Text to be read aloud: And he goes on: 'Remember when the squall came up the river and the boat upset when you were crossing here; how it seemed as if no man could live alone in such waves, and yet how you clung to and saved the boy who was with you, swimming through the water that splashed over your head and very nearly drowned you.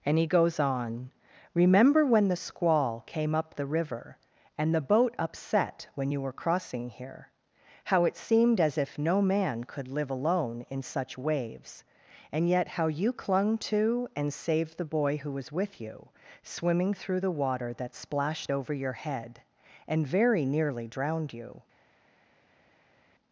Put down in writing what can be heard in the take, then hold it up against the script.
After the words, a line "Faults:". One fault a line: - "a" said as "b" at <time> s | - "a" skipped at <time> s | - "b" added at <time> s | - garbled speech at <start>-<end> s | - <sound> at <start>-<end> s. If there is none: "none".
And he goes on: 'Remember when the squall came up the river and the boat upset when you were crossing here; how it seemed as if no man could live alone in such waves, and yet how you clung to and saved the boy who was with you, swimming through the water that splashed over your head and very nearly drowned you.
Faults:
none